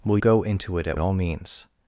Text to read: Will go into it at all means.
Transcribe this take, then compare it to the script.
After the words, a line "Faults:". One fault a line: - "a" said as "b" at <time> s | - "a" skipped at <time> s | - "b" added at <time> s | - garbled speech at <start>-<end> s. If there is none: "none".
Will go into it at all means.
Faults:
none